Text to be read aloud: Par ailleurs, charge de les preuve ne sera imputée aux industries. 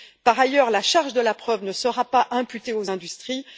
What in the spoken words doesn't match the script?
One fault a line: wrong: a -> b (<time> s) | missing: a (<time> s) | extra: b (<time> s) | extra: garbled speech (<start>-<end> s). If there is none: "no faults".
extra: la (0.7 s)
wrong: les -> la (1.2 s)
extra: pas (2.0 s)